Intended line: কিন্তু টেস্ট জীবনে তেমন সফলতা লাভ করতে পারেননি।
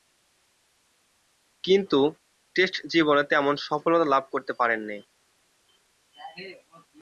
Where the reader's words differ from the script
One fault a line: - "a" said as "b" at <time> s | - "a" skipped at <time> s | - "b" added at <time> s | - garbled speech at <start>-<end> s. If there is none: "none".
none